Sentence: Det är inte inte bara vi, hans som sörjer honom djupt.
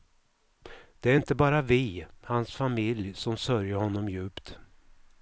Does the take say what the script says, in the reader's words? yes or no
no